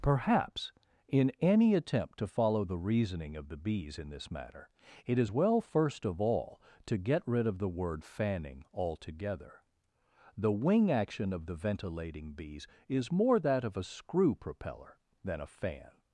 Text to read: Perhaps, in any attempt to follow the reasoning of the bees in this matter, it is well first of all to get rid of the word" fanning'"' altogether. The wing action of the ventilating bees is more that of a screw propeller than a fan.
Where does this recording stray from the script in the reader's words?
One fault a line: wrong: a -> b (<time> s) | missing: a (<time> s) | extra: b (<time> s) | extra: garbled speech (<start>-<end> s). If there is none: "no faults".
no faults